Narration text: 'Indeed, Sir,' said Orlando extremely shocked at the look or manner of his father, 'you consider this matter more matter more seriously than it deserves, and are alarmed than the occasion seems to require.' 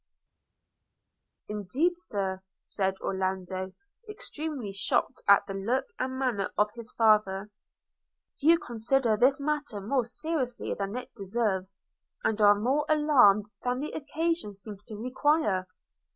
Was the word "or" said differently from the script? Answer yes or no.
yes